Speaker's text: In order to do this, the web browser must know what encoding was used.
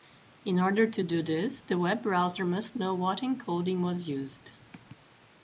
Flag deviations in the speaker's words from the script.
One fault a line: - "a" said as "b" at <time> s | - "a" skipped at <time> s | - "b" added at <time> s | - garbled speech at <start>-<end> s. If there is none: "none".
none